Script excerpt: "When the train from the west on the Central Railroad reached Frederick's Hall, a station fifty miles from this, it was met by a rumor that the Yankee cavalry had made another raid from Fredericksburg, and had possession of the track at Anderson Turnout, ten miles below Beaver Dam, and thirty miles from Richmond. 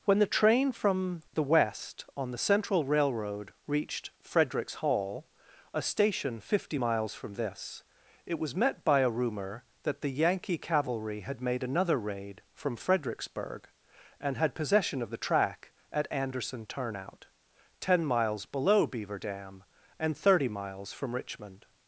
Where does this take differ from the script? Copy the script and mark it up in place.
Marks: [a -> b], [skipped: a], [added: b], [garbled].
"When the train from the west on the Central Railroad reached Frederick's Hall, a station fifty miles from this, it was met by a rumor that the Yankee cavalry had made another raid from Fredericksburg, and had possession of the track at Anderson Turnout, ten miles below Beaver Dam, and thirty miles from Richmond.